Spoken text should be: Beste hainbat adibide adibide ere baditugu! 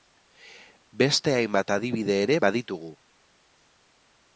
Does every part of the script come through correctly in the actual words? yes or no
no